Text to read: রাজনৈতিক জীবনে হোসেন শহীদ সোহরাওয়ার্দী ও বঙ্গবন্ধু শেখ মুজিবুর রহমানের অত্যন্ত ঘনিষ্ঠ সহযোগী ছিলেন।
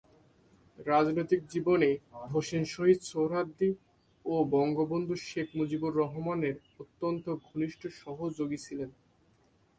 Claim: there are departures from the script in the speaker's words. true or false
false